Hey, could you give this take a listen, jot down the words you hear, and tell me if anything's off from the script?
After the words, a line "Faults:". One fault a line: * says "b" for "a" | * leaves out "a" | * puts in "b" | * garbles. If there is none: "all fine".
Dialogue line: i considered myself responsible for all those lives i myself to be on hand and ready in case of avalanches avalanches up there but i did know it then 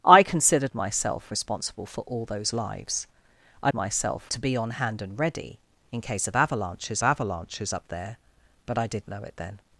i considered myself responsible for all those lives i myself to be on hand and ready in case of avalanches avalanches up there but i did know it then
Faults:
all fine